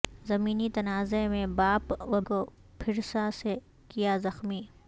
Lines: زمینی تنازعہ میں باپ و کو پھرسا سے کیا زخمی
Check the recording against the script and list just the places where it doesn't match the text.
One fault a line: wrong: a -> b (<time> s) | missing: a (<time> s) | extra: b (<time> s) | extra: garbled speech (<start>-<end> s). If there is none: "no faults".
no faults